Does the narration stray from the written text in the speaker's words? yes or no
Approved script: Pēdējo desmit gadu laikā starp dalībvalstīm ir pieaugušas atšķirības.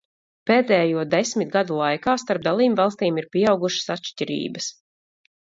no